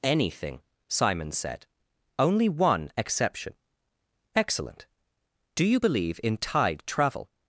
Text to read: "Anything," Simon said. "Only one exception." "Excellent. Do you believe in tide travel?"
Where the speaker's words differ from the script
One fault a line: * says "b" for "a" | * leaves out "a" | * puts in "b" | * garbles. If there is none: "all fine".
all fine